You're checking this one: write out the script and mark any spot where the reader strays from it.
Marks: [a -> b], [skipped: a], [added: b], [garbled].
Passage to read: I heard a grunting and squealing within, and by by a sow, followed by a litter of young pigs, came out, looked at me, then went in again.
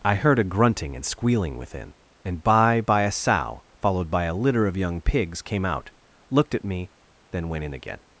I heard a grunting and squealing within, and by by a sow, followed by a litter of young pigs, came out, looked at me, then went in again.